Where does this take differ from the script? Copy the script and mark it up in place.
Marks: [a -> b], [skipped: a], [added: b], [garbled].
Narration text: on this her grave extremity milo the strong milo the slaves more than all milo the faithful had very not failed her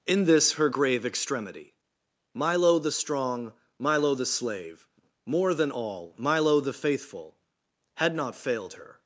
[on -> in] this her grave extremity milo the strong milo the [slaves -> slave] more than all milo the faithful had [skipped: very] not failed her